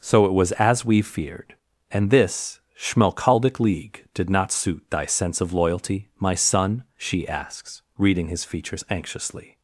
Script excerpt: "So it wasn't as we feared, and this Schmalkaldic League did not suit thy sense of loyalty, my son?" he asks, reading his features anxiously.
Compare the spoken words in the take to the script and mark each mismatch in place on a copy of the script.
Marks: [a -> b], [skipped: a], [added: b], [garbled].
"So it [wasn't -> was] as we feared, and this Schmalkaldic League did not suit thy sense of loyalty, my son?" [he -> she] asks, reading his features anxiously.